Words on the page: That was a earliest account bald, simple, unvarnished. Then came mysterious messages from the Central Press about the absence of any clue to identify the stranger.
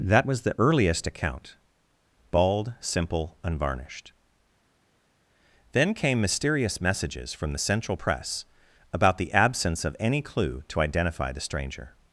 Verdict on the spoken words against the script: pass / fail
fail